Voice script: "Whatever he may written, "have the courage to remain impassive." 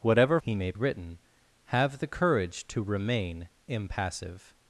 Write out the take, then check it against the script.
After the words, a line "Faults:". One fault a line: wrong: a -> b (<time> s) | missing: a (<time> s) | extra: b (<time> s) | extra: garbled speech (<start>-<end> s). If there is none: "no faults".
"Whatever he may written, "have the courage to remain impassive."
Faults:
no faults